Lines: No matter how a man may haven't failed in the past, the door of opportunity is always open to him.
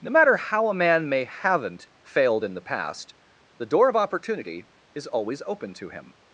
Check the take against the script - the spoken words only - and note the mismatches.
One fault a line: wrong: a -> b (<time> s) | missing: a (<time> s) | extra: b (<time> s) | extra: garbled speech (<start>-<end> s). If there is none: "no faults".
no faults